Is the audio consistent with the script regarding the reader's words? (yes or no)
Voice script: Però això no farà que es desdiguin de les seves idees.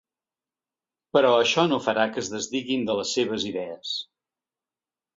yes